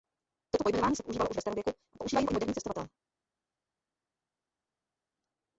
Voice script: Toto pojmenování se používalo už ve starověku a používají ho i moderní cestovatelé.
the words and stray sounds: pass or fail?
pass